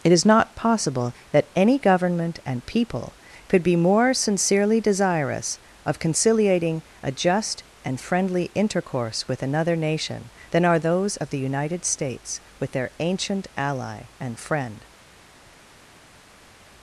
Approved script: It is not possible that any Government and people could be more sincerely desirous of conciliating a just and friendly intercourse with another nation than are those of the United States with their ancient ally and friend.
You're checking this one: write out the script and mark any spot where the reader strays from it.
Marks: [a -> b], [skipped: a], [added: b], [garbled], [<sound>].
It is not possible that any Government and people could be more sincerely desirous of conciliating a just and friendly intercourse with another nation than are those of the United States with their ancient ally and friend.